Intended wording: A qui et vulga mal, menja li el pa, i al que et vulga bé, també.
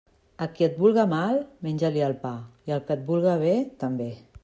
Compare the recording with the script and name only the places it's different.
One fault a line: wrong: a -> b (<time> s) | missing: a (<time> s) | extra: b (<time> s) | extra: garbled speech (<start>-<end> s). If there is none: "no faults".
no faults